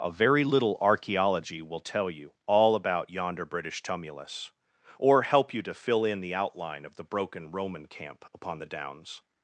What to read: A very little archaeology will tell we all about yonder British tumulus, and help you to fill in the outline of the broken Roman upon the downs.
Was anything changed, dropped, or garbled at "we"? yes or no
yes